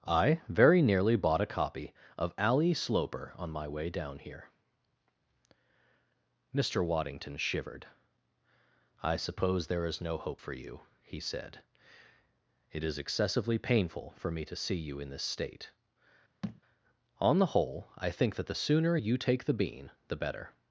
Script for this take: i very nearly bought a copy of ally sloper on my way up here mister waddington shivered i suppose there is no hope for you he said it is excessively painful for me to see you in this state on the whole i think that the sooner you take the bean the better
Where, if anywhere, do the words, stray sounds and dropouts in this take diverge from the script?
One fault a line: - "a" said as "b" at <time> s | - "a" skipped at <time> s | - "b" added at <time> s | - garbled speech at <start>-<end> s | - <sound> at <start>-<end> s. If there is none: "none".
- "up" said as "down" at 3.9 s
- thud at 16.4-16.6 s